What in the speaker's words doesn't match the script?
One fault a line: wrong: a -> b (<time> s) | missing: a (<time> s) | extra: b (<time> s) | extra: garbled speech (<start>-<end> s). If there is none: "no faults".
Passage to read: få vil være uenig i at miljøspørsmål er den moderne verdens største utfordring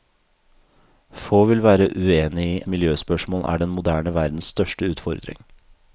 missing: at (2.6 s)